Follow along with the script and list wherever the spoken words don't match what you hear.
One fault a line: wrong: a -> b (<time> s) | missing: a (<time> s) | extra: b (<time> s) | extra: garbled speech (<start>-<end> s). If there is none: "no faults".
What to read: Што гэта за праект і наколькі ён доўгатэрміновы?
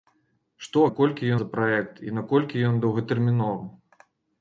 wrong: гэта -> наколькі (0.9 s)